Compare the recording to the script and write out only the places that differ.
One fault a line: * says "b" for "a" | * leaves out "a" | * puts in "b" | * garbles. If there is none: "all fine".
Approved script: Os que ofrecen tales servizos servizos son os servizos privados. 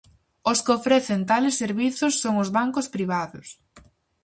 * leaves out "servizos"
* says "bancos" for "servizos"